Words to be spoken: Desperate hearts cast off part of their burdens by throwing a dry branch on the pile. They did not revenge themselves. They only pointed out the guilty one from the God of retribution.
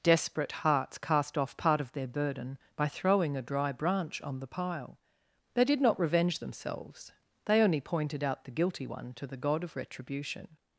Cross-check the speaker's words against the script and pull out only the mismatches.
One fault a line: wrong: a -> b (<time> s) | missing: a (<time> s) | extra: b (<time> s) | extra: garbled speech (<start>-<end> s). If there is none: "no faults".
wrong: burdens -> burden (2.1 s)
wrong: from -> to (9.1 s)